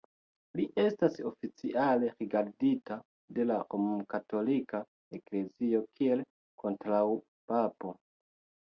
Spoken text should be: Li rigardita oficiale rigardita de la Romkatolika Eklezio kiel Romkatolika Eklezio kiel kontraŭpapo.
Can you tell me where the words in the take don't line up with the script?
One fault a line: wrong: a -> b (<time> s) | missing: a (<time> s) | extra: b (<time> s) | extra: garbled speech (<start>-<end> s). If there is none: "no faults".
wrong: rigardita -> estas (0.8 s)
missing: Romkatolika Eklezio kiel (6.3 s)